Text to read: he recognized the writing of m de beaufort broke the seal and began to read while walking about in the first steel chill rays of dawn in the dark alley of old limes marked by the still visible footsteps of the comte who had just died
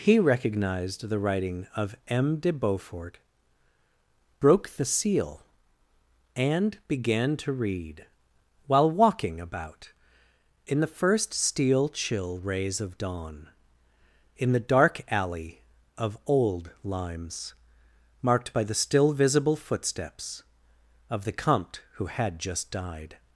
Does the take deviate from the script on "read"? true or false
false